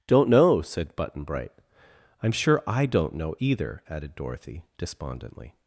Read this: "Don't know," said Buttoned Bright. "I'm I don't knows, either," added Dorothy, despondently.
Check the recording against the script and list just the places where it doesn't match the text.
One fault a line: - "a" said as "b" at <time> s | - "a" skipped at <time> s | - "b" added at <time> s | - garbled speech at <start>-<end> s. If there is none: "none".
- "Buttoned" said as "Button" at 1.0 s
- "sure" added at 2.3 s
- "knows" said as "know" at 3.1 s